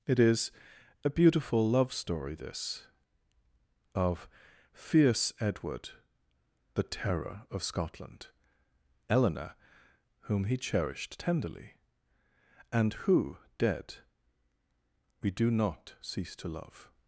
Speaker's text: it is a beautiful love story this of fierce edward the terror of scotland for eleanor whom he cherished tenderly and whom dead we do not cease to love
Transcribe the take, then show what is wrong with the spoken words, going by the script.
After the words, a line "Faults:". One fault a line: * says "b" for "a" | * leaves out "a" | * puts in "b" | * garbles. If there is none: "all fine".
it is a beautiful love story this of fierce edward the terror of scotland eleanor whom he cherished tenderly and who dead we do not cease to love
Faults:
* leaves out "for"
* says "who" for "whom"